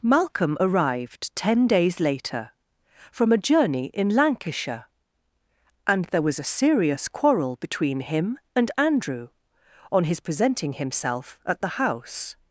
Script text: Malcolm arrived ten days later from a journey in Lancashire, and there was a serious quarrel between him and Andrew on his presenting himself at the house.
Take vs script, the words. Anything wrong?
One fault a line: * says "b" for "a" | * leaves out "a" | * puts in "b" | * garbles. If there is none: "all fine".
all fine